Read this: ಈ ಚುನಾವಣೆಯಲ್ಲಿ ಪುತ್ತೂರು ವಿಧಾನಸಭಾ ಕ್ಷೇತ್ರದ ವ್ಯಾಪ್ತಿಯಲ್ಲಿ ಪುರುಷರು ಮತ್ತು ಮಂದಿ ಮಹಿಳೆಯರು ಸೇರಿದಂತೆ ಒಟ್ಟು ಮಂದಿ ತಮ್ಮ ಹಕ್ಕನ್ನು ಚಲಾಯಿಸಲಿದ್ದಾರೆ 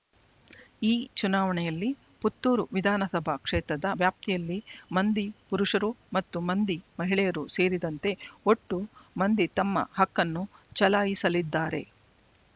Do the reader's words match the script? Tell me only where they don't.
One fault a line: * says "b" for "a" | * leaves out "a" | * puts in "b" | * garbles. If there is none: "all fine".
* puts in "ಮಂದಿ"